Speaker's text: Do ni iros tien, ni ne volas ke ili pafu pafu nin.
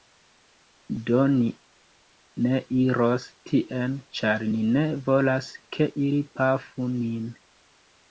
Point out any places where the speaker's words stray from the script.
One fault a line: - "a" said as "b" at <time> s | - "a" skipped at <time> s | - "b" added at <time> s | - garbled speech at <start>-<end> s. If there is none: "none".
- "ne" added at 2.5 s
- "ĉar" added at 4.2 s
- "pafu" skipped at 6.9 s